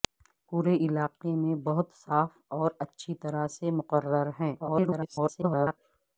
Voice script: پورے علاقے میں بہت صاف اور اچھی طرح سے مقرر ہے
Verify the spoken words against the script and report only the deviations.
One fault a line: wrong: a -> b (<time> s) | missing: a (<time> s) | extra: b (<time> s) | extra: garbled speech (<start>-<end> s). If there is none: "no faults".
extra: garbled speech (4.6-5.8 s)